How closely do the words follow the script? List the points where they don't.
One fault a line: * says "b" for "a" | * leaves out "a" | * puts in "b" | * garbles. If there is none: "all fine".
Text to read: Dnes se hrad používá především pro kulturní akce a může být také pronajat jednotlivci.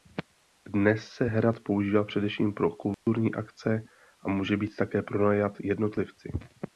all fine